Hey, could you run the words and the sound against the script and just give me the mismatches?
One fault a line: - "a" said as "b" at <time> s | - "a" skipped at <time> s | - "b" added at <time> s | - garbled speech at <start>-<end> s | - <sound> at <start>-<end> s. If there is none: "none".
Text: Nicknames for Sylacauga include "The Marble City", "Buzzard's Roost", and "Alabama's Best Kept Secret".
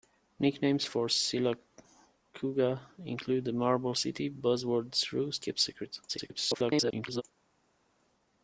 - "and Alabama's Best" skipped at 5.5 s
- garbled speech at 6.1-7.2 s